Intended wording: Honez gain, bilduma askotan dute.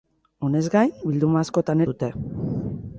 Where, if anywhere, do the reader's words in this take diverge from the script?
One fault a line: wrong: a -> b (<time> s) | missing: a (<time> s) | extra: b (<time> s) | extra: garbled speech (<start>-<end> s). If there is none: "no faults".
no faults